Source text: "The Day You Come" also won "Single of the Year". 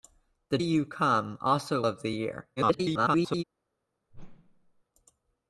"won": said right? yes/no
no